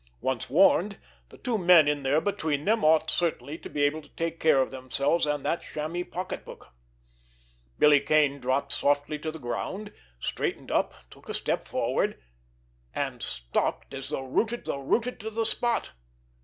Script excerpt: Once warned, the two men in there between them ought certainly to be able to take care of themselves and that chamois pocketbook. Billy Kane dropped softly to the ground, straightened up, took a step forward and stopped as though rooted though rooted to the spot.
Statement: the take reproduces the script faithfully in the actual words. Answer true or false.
true